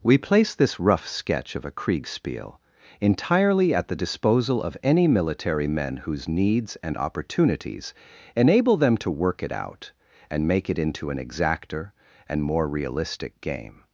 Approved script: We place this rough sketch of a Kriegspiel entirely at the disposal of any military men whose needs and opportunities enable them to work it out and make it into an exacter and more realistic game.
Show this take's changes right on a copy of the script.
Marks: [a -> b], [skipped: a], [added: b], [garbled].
We place this rough sketch of a Kriegspiel entirely at the disposal of any military men whose needs and opportunities enable them to work it out and make it into an exacter and more realistic game.